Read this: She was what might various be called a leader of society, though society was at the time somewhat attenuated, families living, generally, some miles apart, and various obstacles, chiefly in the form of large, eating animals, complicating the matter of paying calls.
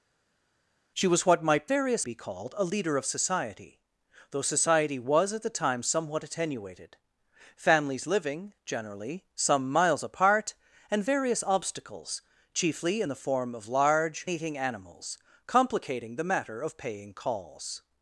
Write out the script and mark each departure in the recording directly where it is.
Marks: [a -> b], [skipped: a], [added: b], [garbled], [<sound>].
She was what might various be called a leader of society, though society was at the time somewhat attenuated, families living, generally, some miles apart, and various obstacles, chiefly in the form of large, eating animals, complicating the matter of paying calls.